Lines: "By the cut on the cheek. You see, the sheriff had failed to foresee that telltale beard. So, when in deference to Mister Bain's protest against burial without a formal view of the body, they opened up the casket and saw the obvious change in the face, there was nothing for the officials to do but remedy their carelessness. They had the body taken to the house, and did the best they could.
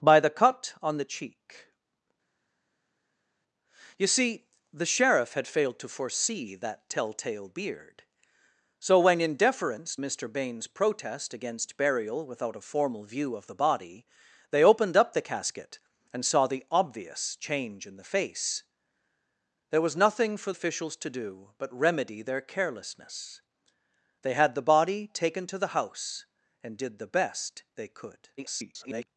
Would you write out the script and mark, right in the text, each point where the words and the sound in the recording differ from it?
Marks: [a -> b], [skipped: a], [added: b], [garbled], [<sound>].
"By the cut on the cheek. You see, the sheriff had failed to foresee that telltale beard. So, when in deference [skipped: to] Mister Bain's protest against burial without a formal view of the body, they opened up the casket and saw the obvious change in the face, there was nothing for [skipped: the] officials to do but remedy their carelessness. They had the body taken to the house, and did the best they could. [garbled]